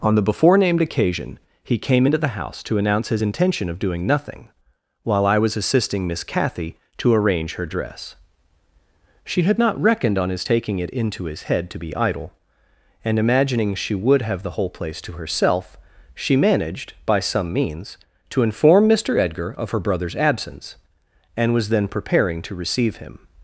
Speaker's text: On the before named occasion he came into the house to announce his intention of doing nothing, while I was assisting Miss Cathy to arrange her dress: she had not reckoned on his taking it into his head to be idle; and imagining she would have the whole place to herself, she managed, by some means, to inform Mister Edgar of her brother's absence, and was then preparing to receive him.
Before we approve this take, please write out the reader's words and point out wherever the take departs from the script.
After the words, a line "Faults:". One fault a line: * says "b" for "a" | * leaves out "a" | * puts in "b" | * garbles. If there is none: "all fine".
On the before named occasion he came into the house to announce his intention of doing nothing, while I was assisting Miss Cathy to arrange her dress: she had not reckoned on his taking it into his head to be idle; and imagining she would have the whole place to herself, she managed, by some means, to inform Mister Edgar of her brother's absence, and was then preparing to receive him.
Faults:
all fine